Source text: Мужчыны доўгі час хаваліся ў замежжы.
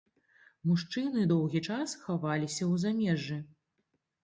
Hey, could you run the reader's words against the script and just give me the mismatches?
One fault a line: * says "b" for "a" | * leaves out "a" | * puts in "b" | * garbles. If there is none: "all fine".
all fine